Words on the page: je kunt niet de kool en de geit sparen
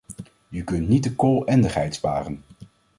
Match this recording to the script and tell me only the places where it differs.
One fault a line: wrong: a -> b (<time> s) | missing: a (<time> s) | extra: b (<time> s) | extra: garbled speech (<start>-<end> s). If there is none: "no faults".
no faults